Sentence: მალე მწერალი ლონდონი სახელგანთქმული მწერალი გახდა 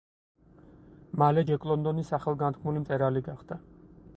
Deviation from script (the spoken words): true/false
true